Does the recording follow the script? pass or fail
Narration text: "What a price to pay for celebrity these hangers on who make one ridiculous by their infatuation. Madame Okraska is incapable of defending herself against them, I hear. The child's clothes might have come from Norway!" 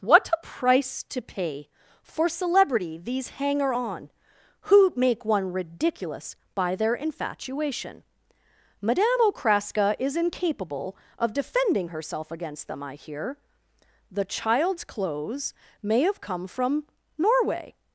fail